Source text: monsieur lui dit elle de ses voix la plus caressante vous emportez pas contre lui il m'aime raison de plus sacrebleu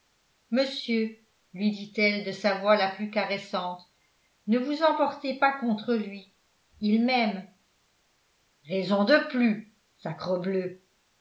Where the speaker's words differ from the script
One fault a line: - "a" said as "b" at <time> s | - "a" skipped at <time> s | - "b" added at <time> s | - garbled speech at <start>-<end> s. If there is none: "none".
- "ses" said as "sa" at 2.3 s
- "ne" added at 4.5 s